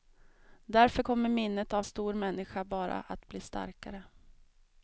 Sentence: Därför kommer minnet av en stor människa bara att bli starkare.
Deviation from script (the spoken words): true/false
true